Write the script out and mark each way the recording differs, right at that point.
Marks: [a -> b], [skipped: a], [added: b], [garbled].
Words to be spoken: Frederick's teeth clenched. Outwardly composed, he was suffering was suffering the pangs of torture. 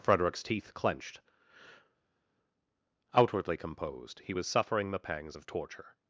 Frederick's teeth clenched. Outwardly composed, he was suffering [skipped: was suffering] the pangs of torture.